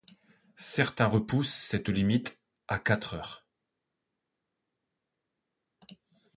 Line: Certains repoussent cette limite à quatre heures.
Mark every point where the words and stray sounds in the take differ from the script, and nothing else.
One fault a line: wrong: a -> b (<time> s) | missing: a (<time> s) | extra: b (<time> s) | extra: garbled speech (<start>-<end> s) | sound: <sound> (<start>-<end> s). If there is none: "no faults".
no faults